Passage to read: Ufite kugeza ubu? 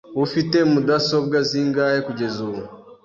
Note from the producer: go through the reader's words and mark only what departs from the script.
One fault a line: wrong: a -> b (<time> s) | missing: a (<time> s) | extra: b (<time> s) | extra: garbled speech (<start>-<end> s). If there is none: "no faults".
extra: mudasobwa zingahe (0.7 s)